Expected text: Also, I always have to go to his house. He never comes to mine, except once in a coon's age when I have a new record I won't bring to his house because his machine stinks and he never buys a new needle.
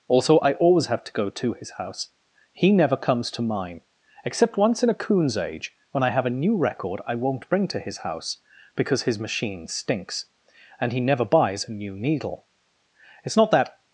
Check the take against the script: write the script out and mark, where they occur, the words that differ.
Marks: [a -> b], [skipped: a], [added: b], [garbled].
Also, I always have to go to his house. He never comes to mine, except once in a coon's age when I have a new record I won't bring to his house because his machine stinks and he never buys a new needle. [added: It's not that]